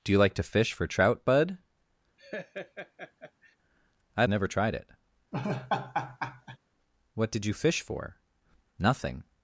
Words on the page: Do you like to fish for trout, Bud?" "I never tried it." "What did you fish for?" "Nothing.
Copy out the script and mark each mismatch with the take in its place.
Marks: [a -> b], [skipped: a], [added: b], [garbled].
Do you like to fish for trout, Bud?" "I never tried it." "What did you fish for?" "Nothing.